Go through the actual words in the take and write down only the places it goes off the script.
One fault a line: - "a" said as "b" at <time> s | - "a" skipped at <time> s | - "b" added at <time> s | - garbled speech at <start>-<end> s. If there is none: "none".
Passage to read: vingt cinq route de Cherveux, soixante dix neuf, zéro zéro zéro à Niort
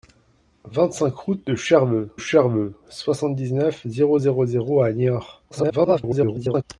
- "Cherveux" added at 2.1 s
- garbled speech at 5.5-6.6 s